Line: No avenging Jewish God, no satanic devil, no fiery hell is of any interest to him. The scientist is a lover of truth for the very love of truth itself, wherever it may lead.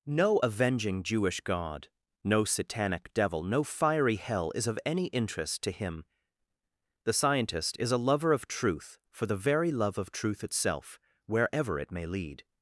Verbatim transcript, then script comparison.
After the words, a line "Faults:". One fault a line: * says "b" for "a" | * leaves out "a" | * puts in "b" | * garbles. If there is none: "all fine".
No avenging Jewish God, no satanic devil, no fiery hell is of any interest to him. The scientist is a lover of truth for the very love of truth itself, wherever it may lead.
Faults:
all fine